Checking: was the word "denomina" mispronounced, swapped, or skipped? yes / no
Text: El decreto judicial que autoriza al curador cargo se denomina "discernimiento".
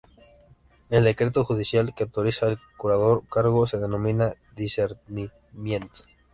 no